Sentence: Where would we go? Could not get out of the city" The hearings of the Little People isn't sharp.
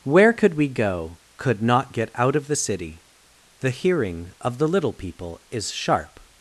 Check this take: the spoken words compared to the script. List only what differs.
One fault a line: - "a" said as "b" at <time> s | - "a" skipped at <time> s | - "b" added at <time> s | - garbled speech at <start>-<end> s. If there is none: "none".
- "would" said as "could" at 0.3 s
- "hearings" said as "hearing" at 3.7 s
- "isn't" said as "is" at 5.5 s